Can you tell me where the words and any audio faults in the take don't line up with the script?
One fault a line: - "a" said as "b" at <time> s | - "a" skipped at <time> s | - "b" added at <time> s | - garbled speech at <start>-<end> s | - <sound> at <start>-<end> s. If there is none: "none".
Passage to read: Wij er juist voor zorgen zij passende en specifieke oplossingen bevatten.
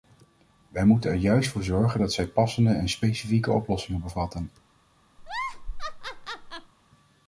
- "moeten" added at 0.8 s
- "dat" added at 2.0 s
- laugh at 5.2-6.7 s